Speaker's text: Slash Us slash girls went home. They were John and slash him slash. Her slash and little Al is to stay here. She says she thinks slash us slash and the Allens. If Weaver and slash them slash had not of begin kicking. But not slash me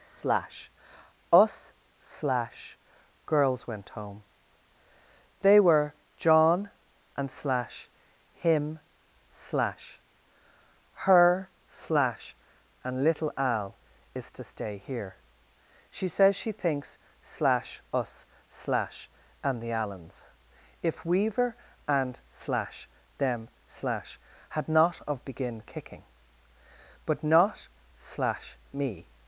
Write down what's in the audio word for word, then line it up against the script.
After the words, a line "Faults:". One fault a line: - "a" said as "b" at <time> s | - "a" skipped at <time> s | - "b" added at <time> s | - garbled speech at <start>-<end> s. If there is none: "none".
Slash Us slash girls went home. They were John and slash him slash. Her slash and little Al is to stay here. She says she thinks slash us slash and the Allens. If Weaver and slash them slash had not of begin kicking. But not slash me
Faults:
none